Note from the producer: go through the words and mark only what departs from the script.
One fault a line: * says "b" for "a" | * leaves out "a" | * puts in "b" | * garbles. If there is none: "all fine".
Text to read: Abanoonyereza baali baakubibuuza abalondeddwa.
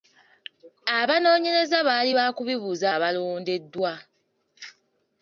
all fine